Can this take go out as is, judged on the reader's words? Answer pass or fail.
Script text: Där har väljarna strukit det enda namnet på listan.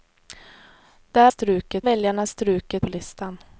fail